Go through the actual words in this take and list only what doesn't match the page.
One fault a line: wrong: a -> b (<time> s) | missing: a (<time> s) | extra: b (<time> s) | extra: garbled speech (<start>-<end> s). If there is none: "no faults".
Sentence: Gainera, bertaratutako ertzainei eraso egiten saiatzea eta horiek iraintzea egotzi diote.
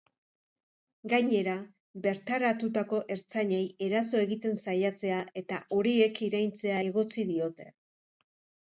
no faults